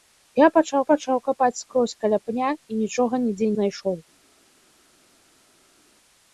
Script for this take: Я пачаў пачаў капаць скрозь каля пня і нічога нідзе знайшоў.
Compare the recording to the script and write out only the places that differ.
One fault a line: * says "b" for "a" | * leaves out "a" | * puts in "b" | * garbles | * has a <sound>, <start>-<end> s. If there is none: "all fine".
all fine